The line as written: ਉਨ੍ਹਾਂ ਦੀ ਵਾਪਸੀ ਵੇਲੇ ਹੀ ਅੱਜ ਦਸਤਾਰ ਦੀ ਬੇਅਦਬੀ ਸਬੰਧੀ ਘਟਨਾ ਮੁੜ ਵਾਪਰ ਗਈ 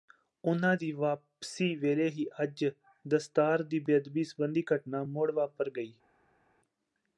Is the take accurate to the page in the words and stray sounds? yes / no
yes